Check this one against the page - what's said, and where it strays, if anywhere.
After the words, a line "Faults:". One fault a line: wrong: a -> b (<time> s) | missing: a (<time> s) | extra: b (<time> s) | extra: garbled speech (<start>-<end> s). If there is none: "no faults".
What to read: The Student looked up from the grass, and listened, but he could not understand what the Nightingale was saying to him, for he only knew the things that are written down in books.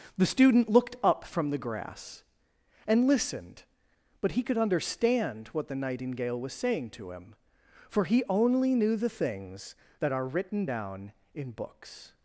The Student looked up from the grass, and listened, but he could understand what the Nightingale was saying to him, for he only knew the things that are written down in books.
Faults:
missing: not (4.6 s)